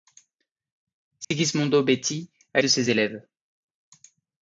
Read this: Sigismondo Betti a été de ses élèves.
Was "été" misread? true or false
true